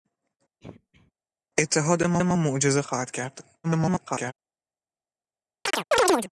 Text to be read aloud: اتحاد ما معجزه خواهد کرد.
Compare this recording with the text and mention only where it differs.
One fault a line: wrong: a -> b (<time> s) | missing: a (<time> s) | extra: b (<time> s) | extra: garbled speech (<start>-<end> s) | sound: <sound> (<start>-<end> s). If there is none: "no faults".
sound: throat clearing (0.6-1.1 s)
extra: ما (2.2 s)
extra: garbled speech (3.6-4.3 s)
sound: chirp (5.7-6.3 s)